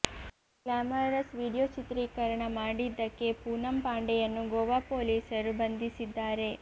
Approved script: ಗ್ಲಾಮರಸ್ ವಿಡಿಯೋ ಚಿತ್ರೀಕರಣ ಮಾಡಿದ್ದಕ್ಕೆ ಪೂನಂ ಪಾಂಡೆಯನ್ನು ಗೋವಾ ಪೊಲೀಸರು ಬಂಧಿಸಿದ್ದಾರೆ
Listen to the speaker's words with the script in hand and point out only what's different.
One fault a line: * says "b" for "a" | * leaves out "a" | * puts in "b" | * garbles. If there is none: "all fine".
all fine